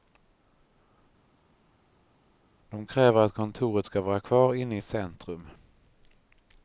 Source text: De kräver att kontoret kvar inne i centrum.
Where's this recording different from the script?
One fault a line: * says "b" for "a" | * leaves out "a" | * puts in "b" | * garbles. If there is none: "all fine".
* puts in "ska vara"